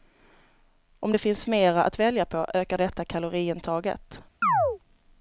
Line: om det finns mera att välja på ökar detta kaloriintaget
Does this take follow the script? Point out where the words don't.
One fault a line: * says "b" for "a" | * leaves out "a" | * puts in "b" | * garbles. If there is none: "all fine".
all fine